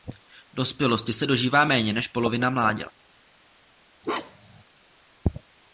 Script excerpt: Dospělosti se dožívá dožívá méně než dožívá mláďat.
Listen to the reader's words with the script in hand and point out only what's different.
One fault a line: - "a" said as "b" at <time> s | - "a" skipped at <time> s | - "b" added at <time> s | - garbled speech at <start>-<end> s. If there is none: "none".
- "dožívá" skipped at 1.6 s
- "dožívá" said as "polovina" at 2.1 s